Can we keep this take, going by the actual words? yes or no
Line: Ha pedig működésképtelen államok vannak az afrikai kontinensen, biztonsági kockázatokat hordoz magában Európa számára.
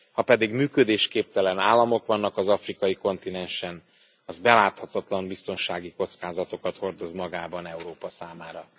no